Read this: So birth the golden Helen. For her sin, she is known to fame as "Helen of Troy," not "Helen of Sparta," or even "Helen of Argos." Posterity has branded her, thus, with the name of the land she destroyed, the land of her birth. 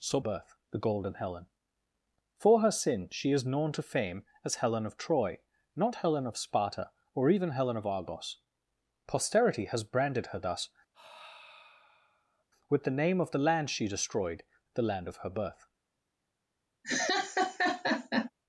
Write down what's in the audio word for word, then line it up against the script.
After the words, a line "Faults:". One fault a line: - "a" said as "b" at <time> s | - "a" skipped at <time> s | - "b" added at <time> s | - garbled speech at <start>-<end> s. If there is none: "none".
So birth the golden Helen. For her sin, she is known to fame as "Helen of Troy," not "Helen of Sparta," or even "Helen of Argos." Posterity has branded her, thus, with the name of the land she destroyed, the land of her birth.
Faults:
none